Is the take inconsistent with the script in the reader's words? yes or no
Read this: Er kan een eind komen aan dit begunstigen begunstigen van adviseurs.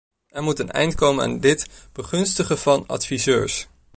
yes